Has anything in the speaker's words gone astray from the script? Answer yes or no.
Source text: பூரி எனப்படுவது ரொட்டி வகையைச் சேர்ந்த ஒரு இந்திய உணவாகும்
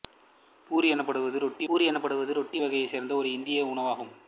yes